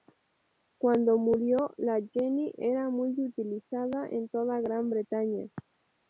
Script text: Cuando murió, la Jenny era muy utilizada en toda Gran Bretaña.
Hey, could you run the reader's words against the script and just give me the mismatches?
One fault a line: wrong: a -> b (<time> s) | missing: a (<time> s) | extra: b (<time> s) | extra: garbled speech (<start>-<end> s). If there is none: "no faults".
no faults